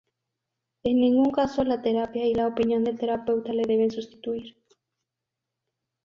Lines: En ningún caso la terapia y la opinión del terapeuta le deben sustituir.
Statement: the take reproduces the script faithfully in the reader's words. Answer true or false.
true